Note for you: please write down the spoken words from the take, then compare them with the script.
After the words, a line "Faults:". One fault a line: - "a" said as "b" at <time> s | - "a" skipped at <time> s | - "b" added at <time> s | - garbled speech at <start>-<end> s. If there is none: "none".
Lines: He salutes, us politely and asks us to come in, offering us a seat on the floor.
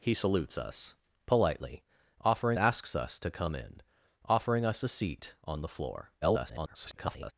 He salutes, us politely offering asks us to come in, offering us a seat on the floor. [garbled]
Faults:
- "and" said as "offering" at 2.2 s
- garbled speech at 6.2-7.3 s